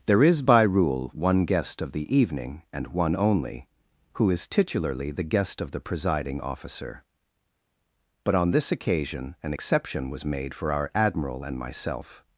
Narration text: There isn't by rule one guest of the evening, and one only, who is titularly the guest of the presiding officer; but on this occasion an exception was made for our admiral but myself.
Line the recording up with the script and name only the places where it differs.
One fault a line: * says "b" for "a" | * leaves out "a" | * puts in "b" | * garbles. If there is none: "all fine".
* says "is" for "isn't"
* says "and" for "but"